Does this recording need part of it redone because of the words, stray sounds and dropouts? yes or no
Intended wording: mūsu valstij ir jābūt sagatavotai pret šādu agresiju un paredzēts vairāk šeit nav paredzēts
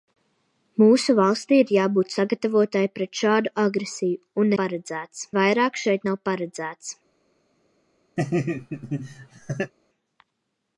yes